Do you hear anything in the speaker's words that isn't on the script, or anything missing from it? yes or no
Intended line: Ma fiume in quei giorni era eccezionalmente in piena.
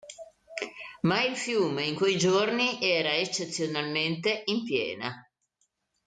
yes